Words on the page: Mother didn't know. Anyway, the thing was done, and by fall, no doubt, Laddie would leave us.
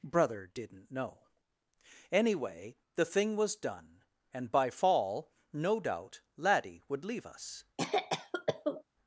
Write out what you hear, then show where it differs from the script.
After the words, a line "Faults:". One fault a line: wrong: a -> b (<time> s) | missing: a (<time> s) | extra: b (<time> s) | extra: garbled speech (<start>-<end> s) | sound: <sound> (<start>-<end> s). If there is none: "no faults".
Brother didn't know. Anyway, the thing was done, and by fall, no doubt, Laddie would leave us.
Faults:
wrong: Mother -> Brother (0.0 s)
sound: cough (7.8-8.8 s)